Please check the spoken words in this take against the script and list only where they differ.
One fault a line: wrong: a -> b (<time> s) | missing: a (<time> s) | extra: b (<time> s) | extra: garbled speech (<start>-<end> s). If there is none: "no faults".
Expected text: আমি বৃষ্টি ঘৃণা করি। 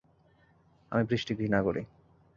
no faults